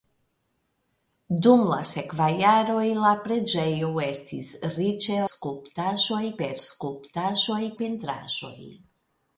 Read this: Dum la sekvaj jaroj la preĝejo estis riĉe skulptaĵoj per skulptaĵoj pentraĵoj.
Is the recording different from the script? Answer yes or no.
no